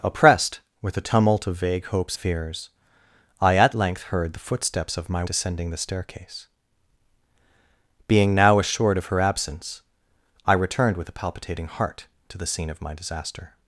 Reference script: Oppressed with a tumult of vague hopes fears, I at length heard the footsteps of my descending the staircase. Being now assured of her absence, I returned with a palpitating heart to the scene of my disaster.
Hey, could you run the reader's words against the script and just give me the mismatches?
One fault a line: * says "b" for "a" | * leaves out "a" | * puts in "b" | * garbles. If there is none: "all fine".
all fine